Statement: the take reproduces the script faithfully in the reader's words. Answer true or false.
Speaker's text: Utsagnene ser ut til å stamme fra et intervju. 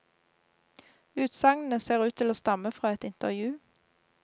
true